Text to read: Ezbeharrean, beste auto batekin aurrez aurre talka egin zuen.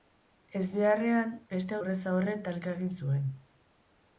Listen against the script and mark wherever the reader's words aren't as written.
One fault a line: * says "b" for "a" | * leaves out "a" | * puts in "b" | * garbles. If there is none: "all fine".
* leaves out "auto batekin"